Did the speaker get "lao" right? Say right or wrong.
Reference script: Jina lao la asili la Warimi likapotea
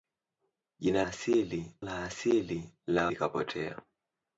wrong